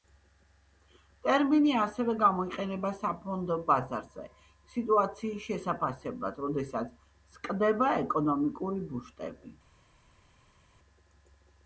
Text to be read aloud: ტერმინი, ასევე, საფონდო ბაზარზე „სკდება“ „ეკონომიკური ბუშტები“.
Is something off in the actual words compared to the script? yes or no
yes